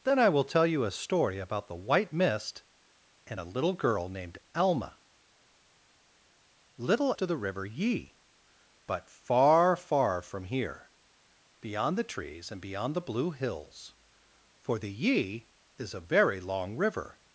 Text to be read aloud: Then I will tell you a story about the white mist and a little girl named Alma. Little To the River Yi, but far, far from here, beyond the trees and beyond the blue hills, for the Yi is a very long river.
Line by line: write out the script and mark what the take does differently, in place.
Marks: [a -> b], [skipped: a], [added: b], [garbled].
Then I will tell you a story about the white mist and a little girl named Alma. Little To the River Yi, but far, far from here, beyond the trees and beyond the blue hills, for the Yi is a very long river.